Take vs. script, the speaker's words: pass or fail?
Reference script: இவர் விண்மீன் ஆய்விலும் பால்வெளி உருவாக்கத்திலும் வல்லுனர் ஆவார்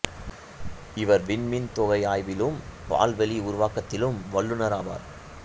fail